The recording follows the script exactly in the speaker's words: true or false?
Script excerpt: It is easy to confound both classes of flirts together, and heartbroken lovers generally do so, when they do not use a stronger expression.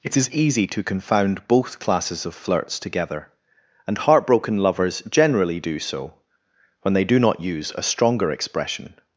true